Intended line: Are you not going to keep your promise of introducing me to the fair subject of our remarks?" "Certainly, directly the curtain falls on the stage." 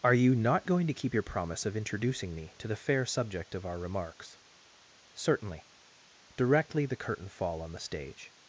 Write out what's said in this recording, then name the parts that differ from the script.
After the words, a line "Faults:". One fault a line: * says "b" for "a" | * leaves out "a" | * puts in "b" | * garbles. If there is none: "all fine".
Are you not going to keep your promise of introducing me to the fair subject of our remarks?" "Certainly, directly the curtain fall on the stage."
Faults:
* says "fall" for "falls"